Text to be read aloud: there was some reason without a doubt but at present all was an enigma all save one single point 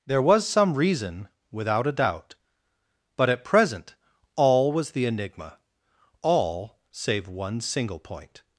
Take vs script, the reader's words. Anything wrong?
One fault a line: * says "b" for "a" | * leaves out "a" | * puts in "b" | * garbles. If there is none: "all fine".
* says "the" for "an"